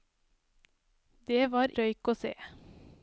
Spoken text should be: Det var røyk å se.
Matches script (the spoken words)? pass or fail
pass